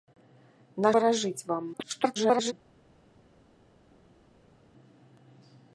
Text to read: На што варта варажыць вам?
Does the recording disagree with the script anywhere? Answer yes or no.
yes